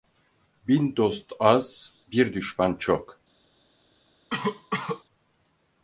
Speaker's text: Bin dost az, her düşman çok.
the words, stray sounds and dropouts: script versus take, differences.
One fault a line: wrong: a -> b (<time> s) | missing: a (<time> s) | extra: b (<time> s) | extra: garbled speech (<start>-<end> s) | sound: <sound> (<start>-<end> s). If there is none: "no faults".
wrong: her -> bir (2.1 s)
sound: cough (4.3-5.0 s)